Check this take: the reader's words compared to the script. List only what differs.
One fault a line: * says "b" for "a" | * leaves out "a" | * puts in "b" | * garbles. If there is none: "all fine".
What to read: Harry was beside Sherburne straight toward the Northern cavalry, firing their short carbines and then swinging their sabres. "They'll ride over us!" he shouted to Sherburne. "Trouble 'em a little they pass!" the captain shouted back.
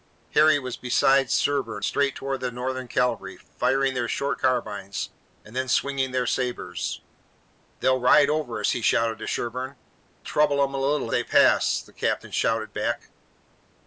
all fine